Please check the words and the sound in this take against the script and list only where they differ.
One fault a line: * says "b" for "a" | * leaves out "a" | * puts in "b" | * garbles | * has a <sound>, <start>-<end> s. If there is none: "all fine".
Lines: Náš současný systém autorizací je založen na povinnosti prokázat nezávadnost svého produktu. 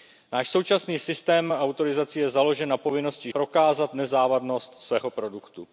all fine